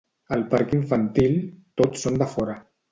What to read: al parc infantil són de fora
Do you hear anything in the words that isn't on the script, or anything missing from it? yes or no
yes